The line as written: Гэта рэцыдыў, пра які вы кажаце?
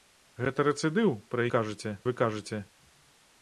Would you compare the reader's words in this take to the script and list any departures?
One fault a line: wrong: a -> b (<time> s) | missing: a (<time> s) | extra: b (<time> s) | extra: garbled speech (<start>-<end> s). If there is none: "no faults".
wrong: які -> кажаце (1.6 s)